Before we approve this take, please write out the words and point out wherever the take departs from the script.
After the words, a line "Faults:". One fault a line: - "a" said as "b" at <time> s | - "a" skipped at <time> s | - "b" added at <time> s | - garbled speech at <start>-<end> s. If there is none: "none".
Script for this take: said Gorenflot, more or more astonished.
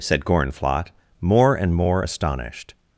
said Gorenflot, more and more astonished.
Faults:
- "or" said as "and" at 1.6 s